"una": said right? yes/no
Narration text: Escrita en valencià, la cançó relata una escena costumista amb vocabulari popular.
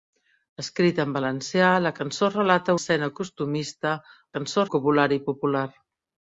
no